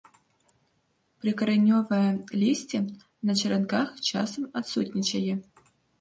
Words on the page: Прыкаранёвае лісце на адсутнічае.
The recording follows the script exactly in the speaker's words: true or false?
false